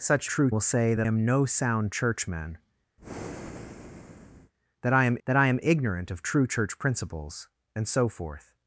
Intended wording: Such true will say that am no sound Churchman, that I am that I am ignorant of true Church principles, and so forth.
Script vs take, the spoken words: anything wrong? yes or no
no